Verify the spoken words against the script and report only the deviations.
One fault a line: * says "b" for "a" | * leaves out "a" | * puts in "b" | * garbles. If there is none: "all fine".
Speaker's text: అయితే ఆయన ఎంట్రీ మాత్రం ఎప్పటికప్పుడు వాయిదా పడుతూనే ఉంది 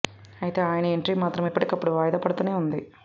all fine